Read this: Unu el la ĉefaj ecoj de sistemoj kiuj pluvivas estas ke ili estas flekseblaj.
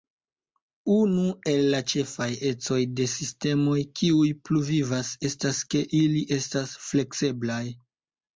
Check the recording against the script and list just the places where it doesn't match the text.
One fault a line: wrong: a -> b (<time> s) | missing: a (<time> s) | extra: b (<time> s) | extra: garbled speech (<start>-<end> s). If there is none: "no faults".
no faults